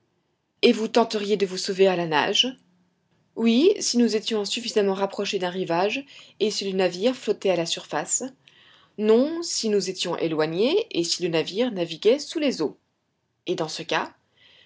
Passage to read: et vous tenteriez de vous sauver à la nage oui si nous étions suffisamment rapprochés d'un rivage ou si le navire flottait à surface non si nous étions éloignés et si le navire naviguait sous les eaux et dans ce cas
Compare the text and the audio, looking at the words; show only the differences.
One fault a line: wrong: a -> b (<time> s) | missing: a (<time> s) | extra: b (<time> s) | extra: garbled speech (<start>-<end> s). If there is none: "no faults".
wrong: ou -> et (6.4 s)
extra: la (7.5 s)